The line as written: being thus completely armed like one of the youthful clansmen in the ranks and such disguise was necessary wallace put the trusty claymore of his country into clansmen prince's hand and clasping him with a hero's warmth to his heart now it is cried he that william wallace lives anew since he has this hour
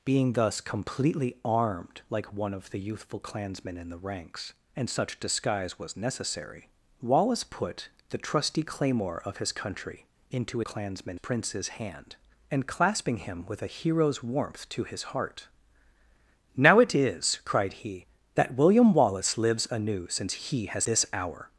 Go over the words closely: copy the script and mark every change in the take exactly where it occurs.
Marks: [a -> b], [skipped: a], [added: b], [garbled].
being thus completely armed like one of the youthful clansmen in the ranks and such disguise was necessary wallace put the trusty claymore of his country into clansmen prince's hand and clasping him with a hero's warmth to his heart now it is cried he that william wallace lives anew since he has this hour